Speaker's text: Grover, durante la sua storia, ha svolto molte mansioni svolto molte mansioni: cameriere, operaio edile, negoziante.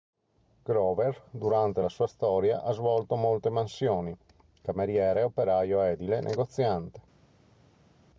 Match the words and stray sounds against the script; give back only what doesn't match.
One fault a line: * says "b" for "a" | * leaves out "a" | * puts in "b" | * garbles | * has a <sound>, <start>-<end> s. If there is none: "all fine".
* leaves out "svolto molte mansioni"